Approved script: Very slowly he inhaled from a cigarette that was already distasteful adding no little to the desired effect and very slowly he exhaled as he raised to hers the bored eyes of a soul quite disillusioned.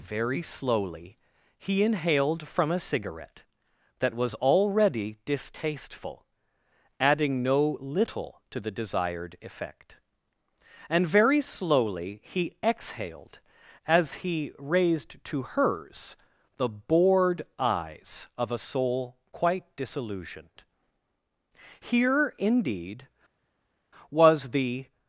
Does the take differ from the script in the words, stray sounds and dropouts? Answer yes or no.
yes